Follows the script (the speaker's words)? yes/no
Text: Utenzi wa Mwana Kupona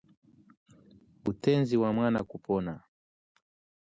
yes